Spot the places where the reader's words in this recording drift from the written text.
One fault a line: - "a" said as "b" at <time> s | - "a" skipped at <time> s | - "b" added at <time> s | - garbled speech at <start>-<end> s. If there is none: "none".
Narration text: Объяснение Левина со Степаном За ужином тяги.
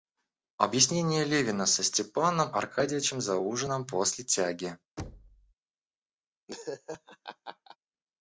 - "Аркадьичем" added at 2.5 s
- "после" added at 3.9 s